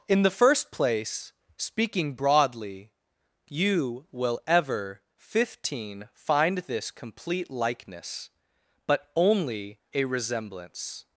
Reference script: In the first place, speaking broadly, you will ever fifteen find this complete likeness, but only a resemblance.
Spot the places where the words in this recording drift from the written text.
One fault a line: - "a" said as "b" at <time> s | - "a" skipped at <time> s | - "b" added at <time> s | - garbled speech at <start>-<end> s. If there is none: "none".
none